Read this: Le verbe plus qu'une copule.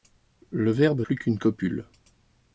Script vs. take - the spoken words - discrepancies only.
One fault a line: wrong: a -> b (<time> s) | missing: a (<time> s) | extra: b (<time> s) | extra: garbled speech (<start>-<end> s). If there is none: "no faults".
no faults